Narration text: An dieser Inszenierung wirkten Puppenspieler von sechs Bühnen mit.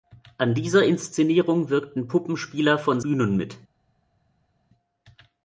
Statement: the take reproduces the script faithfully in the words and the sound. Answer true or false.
false